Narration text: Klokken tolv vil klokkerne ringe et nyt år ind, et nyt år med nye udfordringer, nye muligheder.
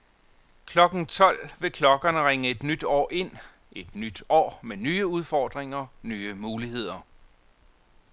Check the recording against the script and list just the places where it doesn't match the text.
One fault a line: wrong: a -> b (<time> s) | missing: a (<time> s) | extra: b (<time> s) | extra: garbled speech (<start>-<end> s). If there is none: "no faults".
no faults